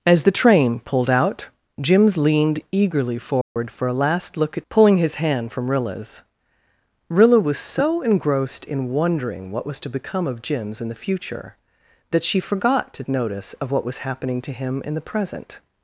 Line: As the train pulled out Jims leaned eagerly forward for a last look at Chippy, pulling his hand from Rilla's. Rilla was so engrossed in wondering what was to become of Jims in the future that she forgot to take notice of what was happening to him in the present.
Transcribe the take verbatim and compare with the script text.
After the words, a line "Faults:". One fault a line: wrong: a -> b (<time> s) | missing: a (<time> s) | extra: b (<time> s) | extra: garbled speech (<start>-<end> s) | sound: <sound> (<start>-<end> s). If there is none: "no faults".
As the train pulled out Jims leaned eagerly forward for a last look at Pulling his hand from Rilla's. Rilla was so engrossed in wondering what was to become of Jims in the future that she forgot to notice of what was happening to him in the present.
Faults:
sound: dropout (3.4-3.6 s)
missing: Chippy (4.6 s)
missing: take (13.0 s)